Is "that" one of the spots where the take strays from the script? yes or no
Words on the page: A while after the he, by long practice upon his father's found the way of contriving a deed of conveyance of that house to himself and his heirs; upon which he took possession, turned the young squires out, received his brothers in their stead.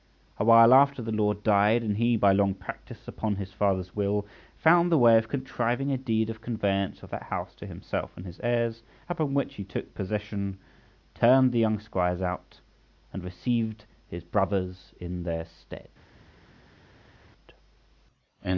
no